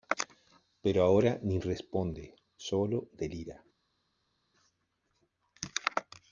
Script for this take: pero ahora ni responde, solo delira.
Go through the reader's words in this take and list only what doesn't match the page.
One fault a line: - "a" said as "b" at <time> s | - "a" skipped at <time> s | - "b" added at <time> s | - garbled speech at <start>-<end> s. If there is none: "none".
none